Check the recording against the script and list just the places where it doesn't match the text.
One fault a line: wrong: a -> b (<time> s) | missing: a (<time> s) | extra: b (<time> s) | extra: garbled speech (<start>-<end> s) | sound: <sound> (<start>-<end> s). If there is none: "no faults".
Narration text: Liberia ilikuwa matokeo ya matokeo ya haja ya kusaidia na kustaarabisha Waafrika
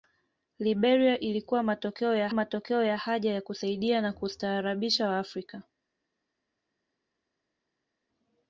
no faults